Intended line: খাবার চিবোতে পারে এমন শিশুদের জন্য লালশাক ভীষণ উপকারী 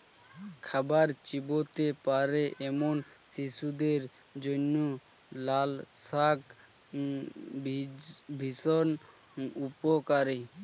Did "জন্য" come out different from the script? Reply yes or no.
no